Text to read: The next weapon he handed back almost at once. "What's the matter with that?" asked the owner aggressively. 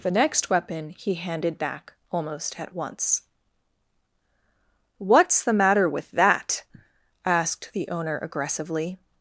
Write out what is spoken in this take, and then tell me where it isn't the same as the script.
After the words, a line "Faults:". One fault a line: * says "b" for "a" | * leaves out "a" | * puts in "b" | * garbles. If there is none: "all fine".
The next weapon he handed back almost at once. "What's the matter with that?" asked the owner aggressively.
Faults:
all fine